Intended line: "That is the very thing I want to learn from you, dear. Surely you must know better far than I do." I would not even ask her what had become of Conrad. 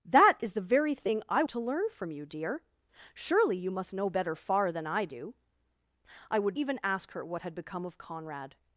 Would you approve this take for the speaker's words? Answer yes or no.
no